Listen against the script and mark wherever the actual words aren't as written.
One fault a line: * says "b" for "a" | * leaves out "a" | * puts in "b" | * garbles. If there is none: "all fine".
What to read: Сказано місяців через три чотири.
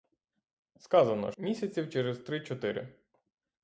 all fine